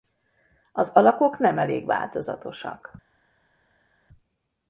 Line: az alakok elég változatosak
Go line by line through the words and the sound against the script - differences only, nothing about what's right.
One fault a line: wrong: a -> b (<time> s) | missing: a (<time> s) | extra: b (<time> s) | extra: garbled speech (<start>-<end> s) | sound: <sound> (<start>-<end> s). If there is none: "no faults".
extra: nem (1.4 s)